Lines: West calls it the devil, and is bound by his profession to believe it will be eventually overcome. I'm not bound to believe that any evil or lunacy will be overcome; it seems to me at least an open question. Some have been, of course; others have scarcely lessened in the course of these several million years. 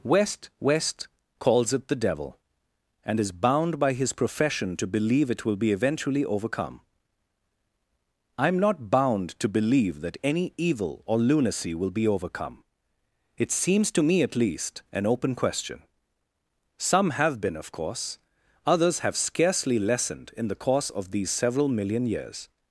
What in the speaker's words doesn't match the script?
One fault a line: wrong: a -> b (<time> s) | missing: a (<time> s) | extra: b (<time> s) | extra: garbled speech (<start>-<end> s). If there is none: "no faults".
extra: west (0.6 s)